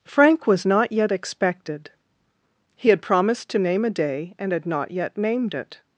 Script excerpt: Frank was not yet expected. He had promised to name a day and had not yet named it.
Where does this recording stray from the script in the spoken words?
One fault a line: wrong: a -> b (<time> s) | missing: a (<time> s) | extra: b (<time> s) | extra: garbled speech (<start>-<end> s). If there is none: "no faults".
no faults